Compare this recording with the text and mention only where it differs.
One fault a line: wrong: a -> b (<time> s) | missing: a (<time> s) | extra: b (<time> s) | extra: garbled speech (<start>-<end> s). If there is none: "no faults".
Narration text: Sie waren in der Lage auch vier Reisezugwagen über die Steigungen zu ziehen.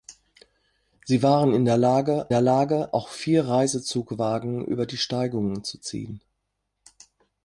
extra: der Lage (2.3 s)